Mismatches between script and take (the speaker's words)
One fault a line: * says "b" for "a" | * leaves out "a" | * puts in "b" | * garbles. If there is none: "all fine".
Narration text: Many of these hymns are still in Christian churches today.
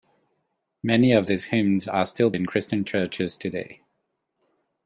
all fine